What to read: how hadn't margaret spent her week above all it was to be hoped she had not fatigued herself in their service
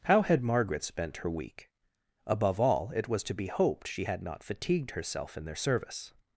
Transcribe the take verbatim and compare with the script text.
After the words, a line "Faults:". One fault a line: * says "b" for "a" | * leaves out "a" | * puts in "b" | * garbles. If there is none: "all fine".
how had margaret spent her week above all it was to be hoped she had not fatigued herself in their service
Faults:
* says "had" for "hadn't"